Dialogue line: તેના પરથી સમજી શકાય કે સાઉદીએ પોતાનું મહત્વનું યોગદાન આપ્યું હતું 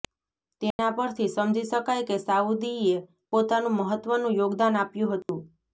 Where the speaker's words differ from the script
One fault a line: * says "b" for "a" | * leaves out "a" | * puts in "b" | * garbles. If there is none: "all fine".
all fine